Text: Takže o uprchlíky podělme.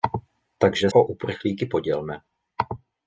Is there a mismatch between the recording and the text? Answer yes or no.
no